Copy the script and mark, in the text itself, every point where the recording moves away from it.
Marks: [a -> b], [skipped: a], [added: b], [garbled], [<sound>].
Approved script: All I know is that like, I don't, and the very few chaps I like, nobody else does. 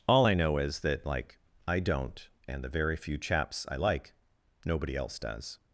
All I know is that like, I don't, and the very few chaps I like, nobody else does.